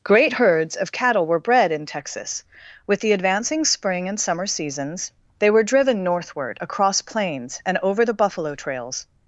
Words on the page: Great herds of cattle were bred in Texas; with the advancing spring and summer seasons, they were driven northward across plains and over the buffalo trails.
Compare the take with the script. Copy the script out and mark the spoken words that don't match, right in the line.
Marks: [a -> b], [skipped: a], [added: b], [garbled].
Great herds of cattle were bred in Texas; with the advancing spring and summer seasons, they were driven northward across plains and over the buffalo trails.